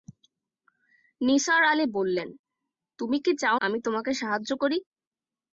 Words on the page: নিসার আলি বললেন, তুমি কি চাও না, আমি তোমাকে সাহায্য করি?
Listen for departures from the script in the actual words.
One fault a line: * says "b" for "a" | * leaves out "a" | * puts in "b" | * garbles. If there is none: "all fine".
* leaves out "না"